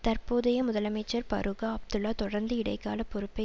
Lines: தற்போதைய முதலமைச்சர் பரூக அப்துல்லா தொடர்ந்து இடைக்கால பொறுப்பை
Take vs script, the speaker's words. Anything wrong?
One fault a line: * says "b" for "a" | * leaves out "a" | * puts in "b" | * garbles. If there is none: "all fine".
all fine